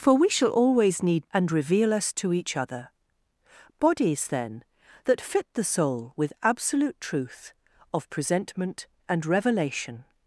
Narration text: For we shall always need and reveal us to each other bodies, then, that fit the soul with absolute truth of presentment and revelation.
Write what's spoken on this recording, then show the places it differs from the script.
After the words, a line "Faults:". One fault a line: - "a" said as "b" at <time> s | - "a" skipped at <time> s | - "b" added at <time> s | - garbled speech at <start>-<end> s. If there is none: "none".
For we shall always need and reveal us to each other bodies, then, that fit the soul with absolute truth of presentment and revelation.
Faults:
none